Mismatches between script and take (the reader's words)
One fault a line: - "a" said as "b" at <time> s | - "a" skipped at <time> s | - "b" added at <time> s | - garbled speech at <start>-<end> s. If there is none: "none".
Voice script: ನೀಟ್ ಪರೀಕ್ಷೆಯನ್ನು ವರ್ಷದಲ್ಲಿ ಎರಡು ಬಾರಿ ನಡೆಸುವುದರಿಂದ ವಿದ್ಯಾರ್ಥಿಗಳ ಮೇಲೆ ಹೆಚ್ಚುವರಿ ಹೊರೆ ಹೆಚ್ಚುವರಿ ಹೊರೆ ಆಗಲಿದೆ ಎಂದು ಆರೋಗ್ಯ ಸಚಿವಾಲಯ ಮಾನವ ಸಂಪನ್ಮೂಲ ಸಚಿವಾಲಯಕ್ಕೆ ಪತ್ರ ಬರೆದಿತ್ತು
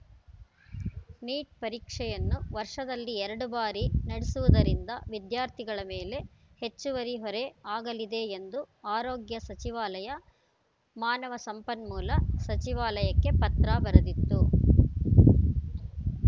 - "ಹೆಚ್ಚುವರಿ ಹೊರೆ" skipped at 7.4 s